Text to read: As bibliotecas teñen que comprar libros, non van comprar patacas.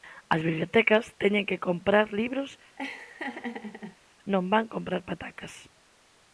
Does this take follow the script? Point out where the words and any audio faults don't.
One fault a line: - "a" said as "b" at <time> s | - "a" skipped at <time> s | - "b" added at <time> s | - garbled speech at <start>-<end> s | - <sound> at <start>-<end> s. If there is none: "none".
- laugh at 2.8-4.0 s